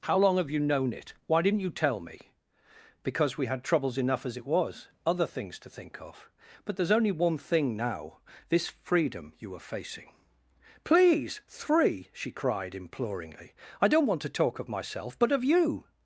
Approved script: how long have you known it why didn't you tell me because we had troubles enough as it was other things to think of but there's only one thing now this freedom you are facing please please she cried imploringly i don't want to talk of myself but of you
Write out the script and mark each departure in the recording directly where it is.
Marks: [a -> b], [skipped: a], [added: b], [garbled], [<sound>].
how long have you known it why didn't you tell me because we had troubles enough as it was other things to think of but there's only one thing now this freedom you are facing please [please -> three] she cried imploringly i don't want to talk of myself but of you